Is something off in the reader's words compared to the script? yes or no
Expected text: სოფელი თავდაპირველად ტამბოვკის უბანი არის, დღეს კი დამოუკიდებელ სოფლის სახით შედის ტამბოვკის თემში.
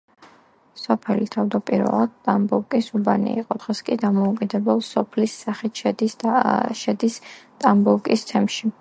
yes